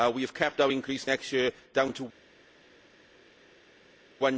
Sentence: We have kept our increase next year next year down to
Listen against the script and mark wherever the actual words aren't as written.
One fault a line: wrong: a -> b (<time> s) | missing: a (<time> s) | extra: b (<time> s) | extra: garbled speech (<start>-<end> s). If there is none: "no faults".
missing: next year (1.5 s)